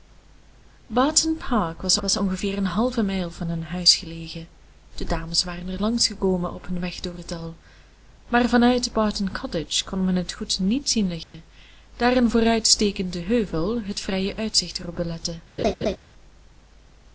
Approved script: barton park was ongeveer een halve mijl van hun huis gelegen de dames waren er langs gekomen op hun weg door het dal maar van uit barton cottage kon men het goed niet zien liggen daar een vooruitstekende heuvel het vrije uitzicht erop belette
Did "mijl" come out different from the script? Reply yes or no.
no